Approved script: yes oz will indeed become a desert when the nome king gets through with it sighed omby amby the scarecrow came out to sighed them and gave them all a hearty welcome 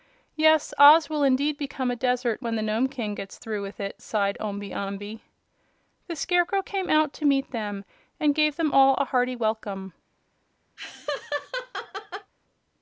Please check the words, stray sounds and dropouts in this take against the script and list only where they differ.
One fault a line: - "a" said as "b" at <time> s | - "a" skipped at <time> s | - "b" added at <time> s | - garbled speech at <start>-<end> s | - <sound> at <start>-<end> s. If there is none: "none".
- "sighed" said as "meet" at 7.2 s
- laugh at 10.8-12.3 s